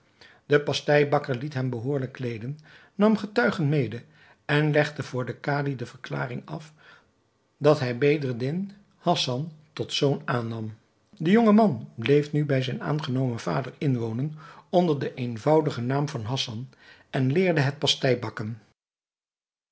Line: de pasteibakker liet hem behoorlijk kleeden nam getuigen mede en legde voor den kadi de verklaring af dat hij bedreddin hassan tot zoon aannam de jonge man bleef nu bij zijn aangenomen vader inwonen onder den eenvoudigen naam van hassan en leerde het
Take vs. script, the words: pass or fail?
pass